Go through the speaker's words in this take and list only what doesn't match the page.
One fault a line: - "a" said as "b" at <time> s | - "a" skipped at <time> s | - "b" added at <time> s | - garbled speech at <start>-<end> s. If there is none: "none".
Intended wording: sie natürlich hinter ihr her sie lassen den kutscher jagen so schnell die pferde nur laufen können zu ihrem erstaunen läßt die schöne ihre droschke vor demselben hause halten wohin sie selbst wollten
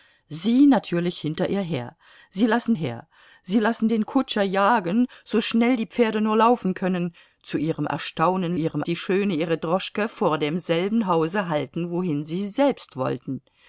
- "her sie lassen" added at 2.7 s
- "läßt" said as "ihrem" at 8.5 s